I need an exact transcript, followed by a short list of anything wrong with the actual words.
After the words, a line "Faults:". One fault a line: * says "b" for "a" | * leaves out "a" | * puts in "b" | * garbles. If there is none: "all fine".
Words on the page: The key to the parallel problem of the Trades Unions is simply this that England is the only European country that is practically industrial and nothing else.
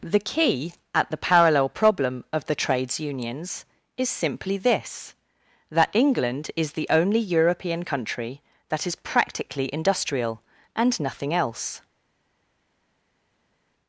The key at the parallel problem of the Trades Unions is simply this that England is the only European country that is practically industrial and nothing else.
Faults:
* says "at" for "to"